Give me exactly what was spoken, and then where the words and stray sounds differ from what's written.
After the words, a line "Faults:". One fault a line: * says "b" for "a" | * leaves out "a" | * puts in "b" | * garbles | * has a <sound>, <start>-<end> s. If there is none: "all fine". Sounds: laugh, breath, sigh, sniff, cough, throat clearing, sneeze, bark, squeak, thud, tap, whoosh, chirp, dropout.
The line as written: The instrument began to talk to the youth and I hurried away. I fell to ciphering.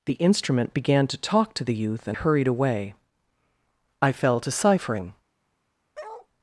The instrument began to talk to the youth and hurried away. I fell to ciphering.
Faults:
* leaves out "I"
* has a bark, 5.9-6.3 s